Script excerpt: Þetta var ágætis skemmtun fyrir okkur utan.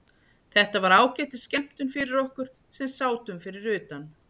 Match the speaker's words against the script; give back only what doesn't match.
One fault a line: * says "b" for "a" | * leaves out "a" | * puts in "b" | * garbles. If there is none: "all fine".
* puts in "sem sátum fyrir"